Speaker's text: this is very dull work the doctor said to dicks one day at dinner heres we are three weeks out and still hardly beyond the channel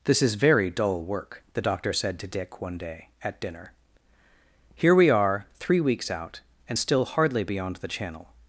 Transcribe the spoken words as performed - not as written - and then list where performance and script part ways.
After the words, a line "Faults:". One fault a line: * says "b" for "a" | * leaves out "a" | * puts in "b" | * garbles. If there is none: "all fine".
this is very dull work the doctor said to dick one day at dinner here we are three weeks out and still hardly beyond the channel
Faults:
* says "dick" for "dicks"
* says "here" for "heres"